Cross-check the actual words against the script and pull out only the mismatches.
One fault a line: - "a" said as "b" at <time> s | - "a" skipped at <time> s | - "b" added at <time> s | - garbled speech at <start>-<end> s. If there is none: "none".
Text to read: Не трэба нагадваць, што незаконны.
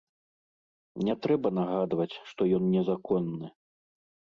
- "ён" added at 2.6 s